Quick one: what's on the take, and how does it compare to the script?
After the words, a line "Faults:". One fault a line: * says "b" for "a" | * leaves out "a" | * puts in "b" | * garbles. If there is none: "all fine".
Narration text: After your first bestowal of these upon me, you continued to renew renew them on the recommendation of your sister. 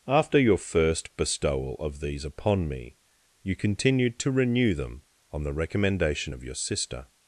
After your first bestowal of these upon me, you continued to renew them on the recommendation of your sister.
Faults:
* leaves out "renew"